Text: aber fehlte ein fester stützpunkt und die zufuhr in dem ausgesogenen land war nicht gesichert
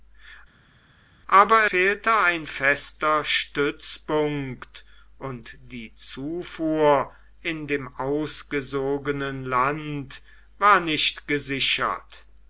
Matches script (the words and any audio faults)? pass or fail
pass